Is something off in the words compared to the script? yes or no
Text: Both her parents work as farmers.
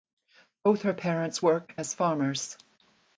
no